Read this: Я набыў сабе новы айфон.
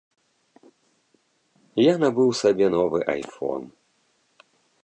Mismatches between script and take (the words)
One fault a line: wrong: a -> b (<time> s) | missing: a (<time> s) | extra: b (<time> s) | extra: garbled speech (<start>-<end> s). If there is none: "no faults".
no faults